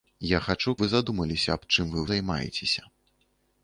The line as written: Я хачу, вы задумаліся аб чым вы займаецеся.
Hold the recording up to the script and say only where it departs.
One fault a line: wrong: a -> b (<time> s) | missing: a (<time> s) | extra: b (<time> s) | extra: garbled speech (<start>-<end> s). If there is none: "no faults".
no faults